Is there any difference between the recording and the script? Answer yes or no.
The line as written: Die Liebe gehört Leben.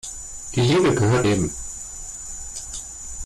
no